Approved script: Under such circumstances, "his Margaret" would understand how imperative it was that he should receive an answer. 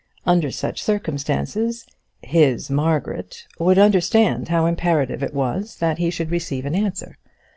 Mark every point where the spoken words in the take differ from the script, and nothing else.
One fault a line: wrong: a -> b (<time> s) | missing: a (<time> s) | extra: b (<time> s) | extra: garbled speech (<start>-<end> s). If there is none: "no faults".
no faults